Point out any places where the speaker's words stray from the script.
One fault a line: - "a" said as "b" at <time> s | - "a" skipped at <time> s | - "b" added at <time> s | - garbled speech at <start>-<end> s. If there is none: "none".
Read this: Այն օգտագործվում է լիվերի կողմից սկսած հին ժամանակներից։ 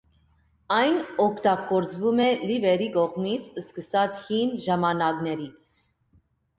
none